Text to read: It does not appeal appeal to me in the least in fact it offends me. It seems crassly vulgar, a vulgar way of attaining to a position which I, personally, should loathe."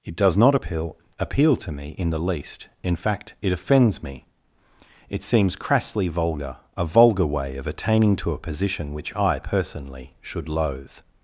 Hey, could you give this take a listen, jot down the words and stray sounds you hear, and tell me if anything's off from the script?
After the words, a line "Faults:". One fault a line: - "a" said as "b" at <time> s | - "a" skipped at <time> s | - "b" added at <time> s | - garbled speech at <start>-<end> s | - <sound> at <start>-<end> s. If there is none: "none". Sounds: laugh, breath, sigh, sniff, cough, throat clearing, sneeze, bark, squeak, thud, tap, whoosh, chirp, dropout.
It does not appeal appeal to me in the least in fact it offends me. It seems crassly vulgar, a vulgar way of attaining to a position which I, personally, should loathe."
Faults:
none